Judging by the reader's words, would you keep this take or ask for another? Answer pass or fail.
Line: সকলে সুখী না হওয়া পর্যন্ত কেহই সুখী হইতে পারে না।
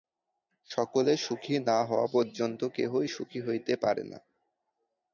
pass